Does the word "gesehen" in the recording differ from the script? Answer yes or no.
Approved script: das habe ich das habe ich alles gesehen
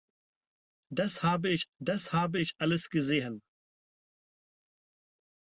no